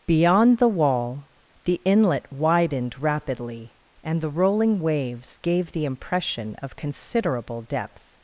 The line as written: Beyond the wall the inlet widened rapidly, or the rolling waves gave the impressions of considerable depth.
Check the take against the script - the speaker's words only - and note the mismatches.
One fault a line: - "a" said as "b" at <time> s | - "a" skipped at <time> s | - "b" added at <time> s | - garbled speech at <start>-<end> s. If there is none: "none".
- "or" said as "and" at 4.0 s
- "impressions" said as "impression" at 5.8 s